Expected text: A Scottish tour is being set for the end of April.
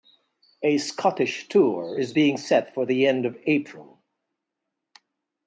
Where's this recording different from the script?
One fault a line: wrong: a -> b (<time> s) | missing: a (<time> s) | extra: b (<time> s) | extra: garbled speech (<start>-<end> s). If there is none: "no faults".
no faults